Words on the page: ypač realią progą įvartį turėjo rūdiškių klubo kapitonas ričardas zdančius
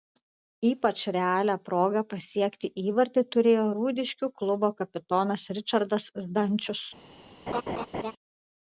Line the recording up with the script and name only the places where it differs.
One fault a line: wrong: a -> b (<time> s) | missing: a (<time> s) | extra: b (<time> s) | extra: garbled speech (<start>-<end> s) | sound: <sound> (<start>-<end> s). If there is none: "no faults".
extra: pasiekti (2.1 s)
sound: laugh (7.5-8.1 s)